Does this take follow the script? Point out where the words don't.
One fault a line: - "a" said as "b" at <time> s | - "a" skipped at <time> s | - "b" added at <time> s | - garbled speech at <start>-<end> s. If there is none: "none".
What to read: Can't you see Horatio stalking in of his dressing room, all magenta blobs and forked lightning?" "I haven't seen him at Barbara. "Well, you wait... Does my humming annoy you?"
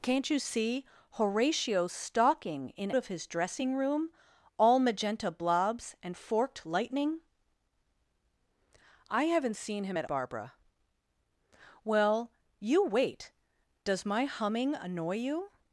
none